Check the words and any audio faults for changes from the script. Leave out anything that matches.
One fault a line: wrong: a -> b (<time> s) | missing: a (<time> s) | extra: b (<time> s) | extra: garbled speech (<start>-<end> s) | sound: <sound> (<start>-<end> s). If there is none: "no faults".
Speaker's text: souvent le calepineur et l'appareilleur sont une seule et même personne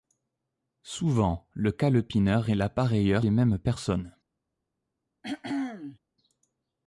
missing: sont une seule (3.2 s)
sound: throat clearing (5.2-6.0 s)